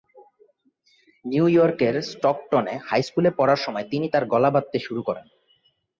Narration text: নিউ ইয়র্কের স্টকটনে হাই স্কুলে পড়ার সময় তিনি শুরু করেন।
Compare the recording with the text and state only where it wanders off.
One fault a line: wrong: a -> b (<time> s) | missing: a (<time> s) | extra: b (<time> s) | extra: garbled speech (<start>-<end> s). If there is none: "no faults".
extra: তার গলা বাঁধতে (4.1 s)